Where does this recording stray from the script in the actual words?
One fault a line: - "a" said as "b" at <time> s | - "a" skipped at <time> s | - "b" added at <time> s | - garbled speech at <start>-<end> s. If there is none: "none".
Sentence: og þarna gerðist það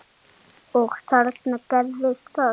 none